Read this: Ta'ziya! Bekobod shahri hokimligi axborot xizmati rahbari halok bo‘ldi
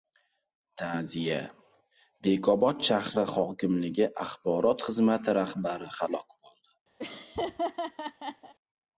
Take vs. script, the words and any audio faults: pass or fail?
fail